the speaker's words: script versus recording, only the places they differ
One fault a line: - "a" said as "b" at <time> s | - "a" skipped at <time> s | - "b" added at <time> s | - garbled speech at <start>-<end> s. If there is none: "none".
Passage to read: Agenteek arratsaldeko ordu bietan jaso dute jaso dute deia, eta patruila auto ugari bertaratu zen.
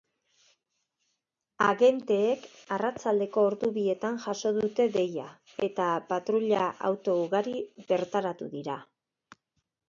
- "jaso dute" skipped at 4.9 s
- "zen" said as "dira" at 8.6 s